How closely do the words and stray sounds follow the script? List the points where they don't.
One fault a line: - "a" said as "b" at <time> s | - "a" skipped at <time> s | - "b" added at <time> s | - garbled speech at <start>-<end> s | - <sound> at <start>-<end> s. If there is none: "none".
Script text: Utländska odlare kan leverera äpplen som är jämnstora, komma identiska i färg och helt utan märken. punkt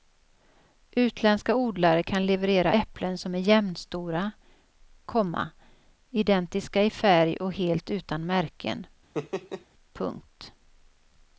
- laugh at 9.1-9.7 s